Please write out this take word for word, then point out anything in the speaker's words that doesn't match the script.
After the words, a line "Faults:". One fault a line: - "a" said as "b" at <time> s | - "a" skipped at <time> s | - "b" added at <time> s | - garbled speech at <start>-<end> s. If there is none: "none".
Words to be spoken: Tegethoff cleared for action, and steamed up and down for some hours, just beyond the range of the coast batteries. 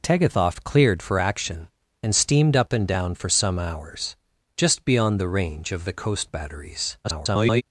Tegethoff cleared for action, and steamed up and down for some hours, just beyond the range of the coast batteries. [garbled]
Faults:
- garbled speech at 7.0-7.6 s